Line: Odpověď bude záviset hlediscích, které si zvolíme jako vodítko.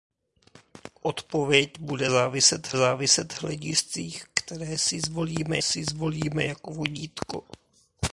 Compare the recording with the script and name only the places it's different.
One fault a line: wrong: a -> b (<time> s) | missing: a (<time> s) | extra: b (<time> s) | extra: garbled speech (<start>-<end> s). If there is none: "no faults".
extra: záviset (2.8 s)
extra: si zvolíme (5.6 s)